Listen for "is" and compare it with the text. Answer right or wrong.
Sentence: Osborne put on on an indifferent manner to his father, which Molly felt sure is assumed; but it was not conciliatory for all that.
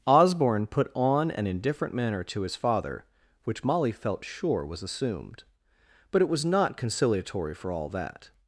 wrong